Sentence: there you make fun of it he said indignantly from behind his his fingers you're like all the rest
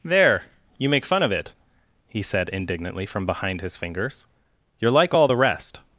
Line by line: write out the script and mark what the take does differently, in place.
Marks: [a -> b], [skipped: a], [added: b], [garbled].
there you make fun of it he said indignantly from behind his [skipped: his] fingers you're like all the rest